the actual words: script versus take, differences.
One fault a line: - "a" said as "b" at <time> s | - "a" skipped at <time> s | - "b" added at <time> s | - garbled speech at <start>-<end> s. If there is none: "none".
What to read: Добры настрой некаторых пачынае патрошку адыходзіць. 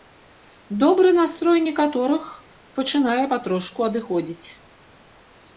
none